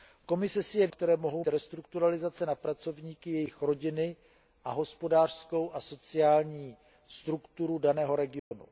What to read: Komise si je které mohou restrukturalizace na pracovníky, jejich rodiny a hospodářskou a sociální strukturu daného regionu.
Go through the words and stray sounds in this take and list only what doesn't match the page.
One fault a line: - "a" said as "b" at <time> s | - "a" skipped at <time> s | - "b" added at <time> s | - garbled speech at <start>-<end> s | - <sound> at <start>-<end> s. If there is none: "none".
- dropout at 8.4-8.5 s